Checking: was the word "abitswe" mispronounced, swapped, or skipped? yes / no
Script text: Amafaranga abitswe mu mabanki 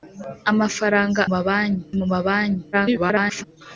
yes